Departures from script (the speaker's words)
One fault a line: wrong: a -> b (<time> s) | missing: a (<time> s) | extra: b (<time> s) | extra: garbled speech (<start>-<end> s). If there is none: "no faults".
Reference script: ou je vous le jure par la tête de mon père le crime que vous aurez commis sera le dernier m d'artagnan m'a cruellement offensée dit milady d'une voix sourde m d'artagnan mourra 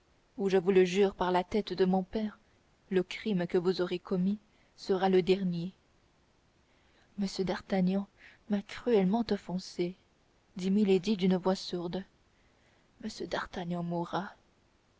no faults